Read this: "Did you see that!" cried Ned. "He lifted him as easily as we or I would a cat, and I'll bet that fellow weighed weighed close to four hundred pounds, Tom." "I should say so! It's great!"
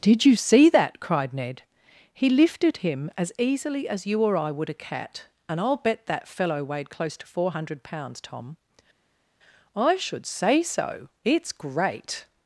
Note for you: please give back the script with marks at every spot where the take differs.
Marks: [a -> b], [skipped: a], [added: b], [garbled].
"Did you see that!" cried Ned. "He lifted him as easily as [we -> you] or I would a cat, and I'll bet that fellow weighed [skipped: weighed] close to four hundred pounds, Tom." "I should say so! It's great!"